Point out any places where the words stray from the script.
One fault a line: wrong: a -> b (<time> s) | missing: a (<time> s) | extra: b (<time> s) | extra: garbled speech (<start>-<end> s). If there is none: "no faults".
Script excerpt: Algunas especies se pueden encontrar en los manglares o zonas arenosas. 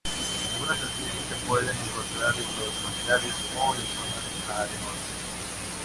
extra: en (3.8 s)